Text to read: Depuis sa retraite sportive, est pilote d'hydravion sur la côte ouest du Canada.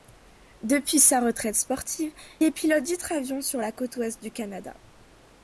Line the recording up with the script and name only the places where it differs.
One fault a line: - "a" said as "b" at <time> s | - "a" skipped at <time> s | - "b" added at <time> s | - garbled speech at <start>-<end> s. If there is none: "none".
none